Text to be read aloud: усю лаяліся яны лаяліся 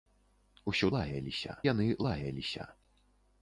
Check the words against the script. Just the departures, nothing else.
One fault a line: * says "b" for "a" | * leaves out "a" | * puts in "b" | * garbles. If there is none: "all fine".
all fine